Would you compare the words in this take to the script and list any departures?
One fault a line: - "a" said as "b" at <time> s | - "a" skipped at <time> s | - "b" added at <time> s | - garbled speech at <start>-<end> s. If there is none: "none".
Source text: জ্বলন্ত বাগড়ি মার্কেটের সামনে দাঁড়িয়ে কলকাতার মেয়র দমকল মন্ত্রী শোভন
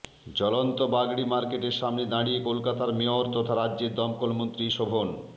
- "তথা রাজ্যের" added at 3.3 s